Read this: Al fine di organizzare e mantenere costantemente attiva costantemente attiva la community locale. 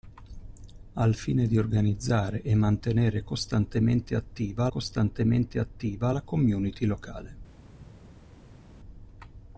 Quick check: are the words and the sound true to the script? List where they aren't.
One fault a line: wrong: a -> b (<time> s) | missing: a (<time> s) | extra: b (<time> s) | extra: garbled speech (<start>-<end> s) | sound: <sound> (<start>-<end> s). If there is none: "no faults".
no faults